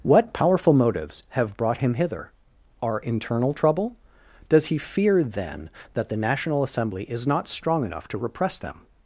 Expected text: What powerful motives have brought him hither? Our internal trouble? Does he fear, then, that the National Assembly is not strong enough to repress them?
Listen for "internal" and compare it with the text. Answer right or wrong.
right